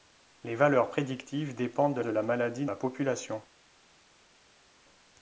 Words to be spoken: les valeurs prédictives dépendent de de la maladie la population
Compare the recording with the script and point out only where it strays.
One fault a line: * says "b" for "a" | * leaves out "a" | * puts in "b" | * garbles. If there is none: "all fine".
all fine